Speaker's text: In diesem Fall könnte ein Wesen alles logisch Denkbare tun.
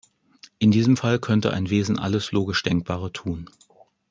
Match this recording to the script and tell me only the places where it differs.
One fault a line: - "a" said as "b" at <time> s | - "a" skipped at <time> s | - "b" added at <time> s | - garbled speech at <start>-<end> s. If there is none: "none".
none